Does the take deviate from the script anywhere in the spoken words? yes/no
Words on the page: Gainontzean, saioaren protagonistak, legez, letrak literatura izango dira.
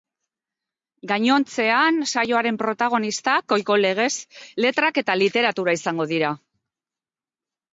yes